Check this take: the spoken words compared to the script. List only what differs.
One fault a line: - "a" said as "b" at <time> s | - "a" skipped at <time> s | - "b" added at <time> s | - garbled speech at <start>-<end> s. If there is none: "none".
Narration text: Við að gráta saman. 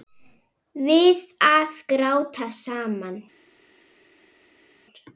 none